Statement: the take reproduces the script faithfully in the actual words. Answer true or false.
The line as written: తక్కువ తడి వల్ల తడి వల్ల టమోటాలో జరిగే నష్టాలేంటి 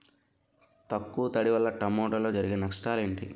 false